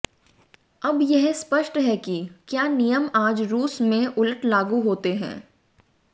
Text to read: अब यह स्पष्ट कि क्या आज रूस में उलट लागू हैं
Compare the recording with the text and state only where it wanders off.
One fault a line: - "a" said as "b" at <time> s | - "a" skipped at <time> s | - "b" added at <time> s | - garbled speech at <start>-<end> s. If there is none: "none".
- "है" added at 1.8 s
- "नियम" added at 2.7 s
- "होते" added at 4.8 s